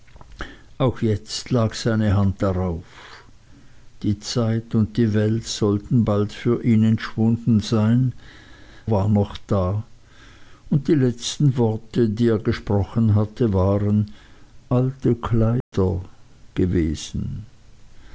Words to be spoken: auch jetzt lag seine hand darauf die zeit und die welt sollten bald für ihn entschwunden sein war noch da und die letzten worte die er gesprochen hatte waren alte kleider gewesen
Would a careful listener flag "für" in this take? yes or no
no